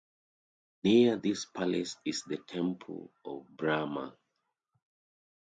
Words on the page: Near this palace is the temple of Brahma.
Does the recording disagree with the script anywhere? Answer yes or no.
no